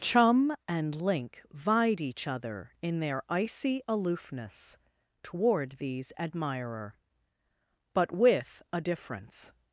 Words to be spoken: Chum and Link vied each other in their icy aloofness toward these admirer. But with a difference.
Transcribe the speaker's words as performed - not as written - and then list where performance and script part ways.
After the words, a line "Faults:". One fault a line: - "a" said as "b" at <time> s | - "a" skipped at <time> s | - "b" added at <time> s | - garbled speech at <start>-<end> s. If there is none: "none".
Chum and Link vied each other in their icy aloofness toward these admirer. But with a difference.
Faults:
none